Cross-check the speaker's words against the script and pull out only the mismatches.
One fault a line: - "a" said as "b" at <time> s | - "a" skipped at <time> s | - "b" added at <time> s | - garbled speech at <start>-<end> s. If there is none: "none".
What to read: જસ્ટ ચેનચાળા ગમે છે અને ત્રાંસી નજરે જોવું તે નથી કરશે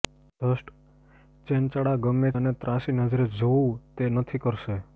- "છે" skipped at 2.3 s